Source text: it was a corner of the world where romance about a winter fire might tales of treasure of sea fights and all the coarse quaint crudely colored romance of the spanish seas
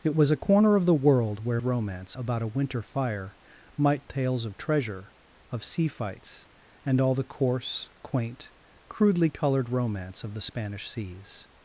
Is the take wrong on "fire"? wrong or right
right